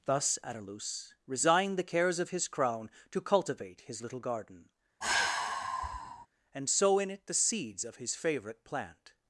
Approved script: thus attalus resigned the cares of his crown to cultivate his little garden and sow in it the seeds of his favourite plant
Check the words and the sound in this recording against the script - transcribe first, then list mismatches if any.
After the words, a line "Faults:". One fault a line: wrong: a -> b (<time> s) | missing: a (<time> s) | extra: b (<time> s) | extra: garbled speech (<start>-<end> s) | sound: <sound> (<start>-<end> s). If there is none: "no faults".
thus attalus resigned the cares of his crown to cultivate his little garden and sow in it the seeds of his favourite plant
Faults:
sound: sigh (5.0-6.3 s)